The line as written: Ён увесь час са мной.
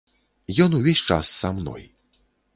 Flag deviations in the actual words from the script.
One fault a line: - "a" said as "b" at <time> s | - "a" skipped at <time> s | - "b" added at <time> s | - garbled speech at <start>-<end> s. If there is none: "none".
none